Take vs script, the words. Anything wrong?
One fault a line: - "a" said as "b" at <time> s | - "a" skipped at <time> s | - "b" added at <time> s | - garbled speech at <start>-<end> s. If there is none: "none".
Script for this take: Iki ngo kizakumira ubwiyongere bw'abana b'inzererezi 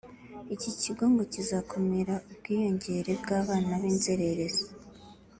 - "kigo" added at 0.8 s